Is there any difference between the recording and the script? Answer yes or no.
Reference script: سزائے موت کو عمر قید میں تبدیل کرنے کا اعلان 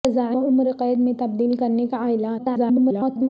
yes